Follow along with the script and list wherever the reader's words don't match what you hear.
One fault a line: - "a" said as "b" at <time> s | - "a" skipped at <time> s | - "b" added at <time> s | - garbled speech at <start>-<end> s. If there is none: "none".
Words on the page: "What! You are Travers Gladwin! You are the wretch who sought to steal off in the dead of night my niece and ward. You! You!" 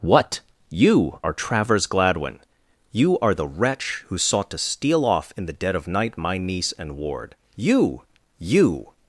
none